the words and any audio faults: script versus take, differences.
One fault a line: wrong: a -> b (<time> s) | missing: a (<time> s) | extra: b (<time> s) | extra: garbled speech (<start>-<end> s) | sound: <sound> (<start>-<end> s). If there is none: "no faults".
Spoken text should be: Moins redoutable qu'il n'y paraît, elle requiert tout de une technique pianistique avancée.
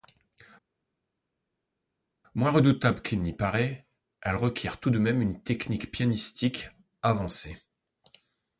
extra: même (5.0 s)